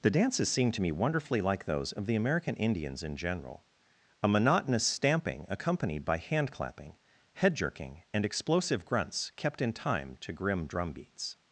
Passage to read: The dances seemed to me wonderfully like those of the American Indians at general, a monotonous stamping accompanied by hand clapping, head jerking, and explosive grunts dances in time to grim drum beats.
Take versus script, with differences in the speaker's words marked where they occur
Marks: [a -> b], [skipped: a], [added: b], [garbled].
The dances seemed to me wonderfully like those of the American Indians [at -> in] general, a monotonous stamping accompanied by hand clapping, head jerking, and explosive grunts [dances -> kept] in time to grim drum beats.